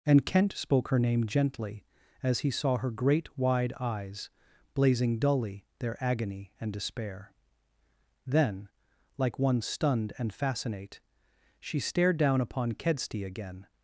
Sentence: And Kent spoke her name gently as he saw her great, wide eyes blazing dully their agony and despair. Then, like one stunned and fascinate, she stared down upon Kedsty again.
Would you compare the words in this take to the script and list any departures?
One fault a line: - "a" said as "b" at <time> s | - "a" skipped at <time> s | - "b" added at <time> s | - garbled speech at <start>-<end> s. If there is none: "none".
none